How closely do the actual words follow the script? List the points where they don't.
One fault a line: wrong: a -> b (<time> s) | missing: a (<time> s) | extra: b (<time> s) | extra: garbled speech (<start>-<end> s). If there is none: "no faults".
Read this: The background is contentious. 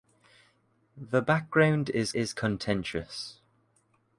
extra: is (2.1 s)